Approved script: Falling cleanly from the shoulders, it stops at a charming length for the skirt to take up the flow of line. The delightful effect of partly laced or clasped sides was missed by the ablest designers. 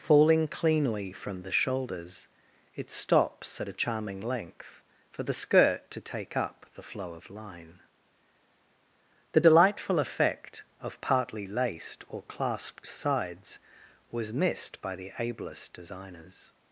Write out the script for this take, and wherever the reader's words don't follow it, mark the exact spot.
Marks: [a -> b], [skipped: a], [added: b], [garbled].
Falling cleanly from the shoulders, it stops at a charming length for the skirt to take up the flow of line. The delightful effect of partly laced or clasped sides was missed by the ablest designers.